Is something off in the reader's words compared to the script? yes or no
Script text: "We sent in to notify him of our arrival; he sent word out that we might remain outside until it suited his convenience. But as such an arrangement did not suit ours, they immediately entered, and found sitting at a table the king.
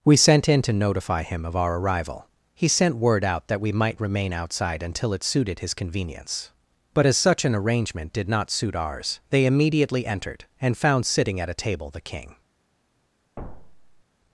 no